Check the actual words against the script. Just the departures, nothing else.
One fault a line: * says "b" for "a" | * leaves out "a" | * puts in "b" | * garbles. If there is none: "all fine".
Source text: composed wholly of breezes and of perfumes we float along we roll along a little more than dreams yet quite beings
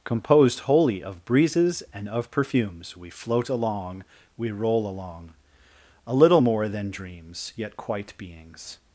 all fine